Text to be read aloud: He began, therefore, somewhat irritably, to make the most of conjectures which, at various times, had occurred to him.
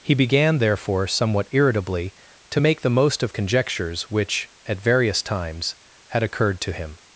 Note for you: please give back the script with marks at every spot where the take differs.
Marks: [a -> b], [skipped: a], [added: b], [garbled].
He began, therefore, somewhat irritably, to make the most of conjectures which, at various times, had occurred to him.